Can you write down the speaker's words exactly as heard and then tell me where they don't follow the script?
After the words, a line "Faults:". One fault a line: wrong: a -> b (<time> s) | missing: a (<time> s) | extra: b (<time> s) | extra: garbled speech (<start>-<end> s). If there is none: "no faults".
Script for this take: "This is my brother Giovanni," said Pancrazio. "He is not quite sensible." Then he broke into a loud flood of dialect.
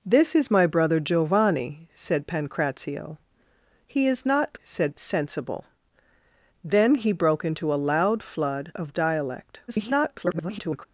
"This is my brother Giovanni," said Pancrazio. "He is not said sensible." Then he broke into a loud flood of dialect. [garbled]
Faults:
wrong: quite -> said (4.6 s)
extra: garbled speech (9.7-10.9 s)